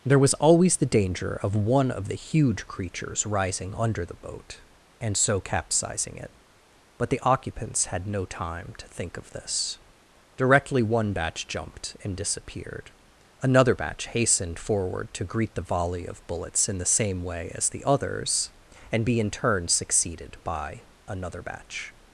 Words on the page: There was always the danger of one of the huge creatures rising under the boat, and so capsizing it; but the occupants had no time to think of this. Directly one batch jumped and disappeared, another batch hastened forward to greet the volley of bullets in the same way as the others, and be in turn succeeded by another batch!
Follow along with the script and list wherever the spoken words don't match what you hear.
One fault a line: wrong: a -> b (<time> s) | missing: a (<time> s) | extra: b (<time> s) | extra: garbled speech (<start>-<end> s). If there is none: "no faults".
no faults